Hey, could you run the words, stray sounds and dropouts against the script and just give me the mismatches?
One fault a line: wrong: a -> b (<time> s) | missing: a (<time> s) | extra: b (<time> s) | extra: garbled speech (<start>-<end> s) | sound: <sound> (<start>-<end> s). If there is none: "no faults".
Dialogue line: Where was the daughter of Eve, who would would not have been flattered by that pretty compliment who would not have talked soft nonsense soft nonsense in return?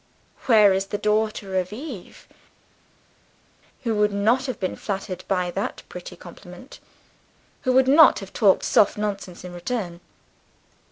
wrong: was -> is (0.7 s)
missing: would (4.1 s)
missing: soft nonsense (9.4 s)